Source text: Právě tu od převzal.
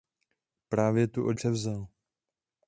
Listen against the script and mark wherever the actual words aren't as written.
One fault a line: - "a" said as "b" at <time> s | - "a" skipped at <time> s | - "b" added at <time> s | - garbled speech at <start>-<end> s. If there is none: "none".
none